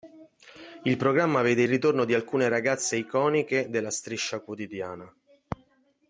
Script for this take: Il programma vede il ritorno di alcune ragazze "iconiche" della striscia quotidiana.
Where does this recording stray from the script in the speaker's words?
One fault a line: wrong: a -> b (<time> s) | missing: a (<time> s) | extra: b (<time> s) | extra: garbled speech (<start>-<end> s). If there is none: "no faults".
missing: il (1.6 s)